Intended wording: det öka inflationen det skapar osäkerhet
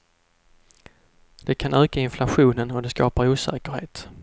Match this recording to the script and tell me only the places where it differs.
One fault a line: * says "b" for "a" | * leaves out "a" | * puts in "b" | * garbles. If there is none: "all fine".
* puts in "kan"
* puts in "och"